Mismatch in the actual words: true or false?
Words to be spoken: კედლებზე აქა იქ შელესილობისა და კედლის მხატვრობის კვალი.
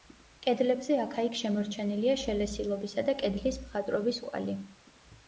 true